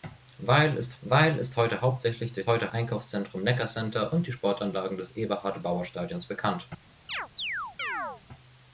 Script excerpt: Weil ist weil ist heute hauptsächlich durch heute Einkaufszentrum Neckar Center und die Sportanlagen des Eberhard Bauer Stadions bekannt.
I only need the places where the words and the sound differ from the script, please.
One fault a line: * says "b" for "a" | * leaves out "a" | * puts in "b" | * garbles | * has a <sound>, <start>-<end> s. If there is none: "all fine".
* has a chirp, 7.1-8.2 s